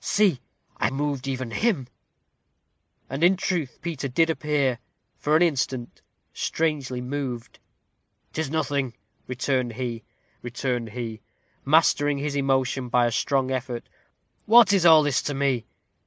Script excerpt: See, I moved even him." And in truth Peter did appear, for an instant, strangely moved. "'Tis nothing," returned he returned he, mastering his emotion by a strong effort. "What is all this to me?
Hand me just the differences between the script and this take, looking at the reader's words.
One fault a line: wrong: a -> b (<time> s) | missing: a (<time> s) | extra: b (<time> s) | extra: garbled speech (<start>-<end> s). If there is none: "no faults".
no faults